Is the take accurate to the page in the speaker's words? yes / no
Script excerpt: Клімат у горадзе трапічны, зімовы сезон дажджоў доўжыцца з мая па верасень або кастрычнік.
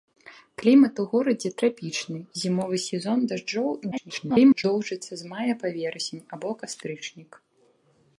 no